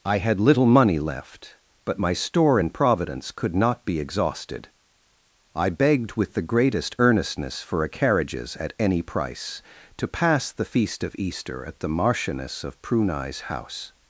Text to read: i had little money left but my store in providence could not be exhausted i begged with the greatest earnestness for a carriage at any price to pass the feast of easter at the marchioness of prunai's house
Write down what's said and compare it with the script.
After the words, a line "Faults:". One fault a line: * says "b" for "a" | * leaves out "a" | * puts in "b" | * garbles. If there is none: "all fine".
i had little money left but my store in providence could not be exhausted i begged with the greatest earnestness for a carriages at any price to pass the feast of easter at the marchioness of prunai's house
Faults:
* says "carriages" for "carriage"